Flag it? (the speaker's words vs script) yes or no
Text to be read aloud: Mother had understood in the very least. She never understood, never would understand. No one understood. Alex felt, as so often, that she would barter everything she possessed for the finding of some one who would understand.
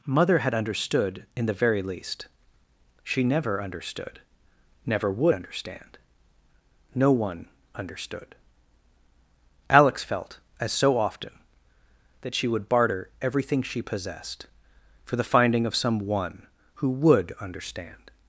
no